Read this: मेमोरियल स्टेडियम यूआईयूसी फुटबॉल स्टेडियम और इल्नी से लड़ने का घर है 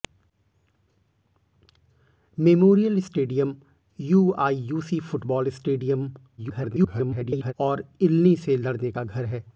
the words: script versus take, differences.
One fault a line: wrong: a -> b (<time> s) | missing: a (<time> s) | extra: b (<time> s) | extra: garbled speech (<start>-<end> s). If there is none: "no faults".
extra: garbled speech (6.4-7.5 s)